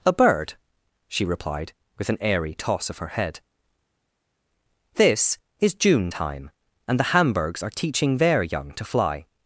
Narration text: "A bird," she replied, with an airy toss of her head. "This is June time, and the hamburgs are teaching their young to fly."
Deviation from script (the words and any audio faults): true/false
false